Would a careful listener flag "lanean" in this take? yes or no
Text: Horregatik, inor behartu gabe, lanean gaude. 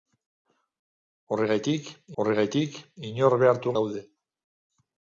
yes